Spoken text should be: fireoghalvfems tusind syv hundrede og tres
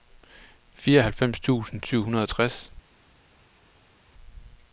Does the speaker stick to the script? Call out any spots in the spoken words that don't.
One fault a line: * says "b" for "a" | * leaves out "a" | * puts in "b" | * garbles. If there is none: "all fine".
all fine